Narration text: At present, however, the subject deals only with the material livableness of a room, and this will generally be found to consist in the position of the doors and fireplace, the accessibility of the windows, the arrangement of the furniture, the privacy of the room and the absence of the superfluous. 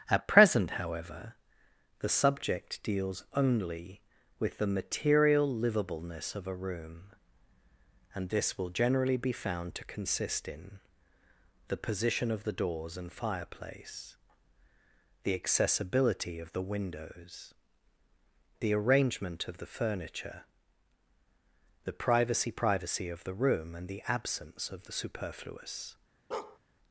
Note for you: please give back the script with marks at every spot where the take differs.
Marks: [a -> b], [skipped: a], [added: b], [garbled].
At present, however, the subject deals only with the material livableness of a room, and this will generally be found to consist in the position of the doors and fireplace, the accessibility of the windows, the arrangement of the furniture, the privacy [added: privacy] of the room and the absence of the superfluous.